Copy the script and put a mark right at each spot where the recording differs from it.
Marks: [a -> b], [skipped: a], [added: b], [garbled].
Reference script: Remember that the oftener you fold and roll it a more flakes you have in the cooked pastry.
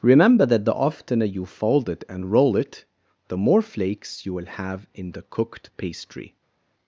Remember that the oftener you fold [added: it] and roll it [a -> the] more flakes you [added: will] have in the cooked pastry.